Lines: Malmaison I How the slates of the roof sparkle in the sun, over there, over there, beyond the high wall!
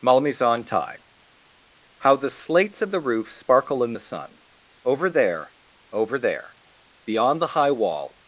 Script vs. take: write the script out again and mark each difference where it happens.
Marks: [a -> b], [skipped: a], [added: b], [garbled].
Malmaison [I -> tie] How the slates of the roof sparkle in the sun, over there, over there, beyond the high wall!